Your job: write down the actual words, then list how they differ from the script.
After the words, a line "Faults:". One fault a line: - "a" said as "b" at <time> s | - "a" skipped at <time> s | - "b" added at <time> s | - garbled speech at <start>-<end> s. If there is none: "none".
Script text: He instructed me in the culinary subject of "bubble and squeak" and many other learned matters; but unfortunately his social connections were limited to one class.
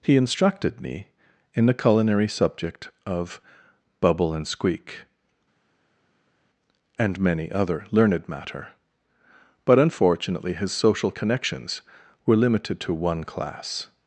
He instructed me in the culinary subject of "bubble and squeak" and many other learned matter; but unfortunately his social connections were limited to one class.
Faults:
- "matters" said as "matter" at 8.3 s